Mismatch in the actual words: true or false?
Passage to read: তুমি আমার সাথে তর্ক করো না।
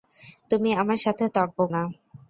true